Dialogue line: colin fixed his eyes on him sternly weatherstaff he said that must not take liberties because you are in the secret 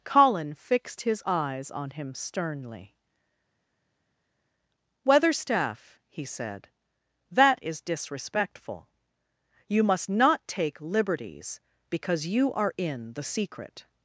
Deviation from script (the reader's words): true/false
true